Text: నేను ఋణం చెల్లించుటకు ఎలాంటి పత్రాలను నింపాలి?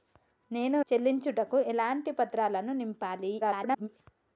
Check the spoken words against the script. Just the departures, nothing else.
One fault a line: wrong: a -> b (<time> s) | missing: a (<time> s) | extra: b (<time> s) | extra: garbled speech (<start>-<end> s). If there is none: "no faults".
missing: ఋణం (0.8 s)
extra: garbled speech (3.4-3.9 s)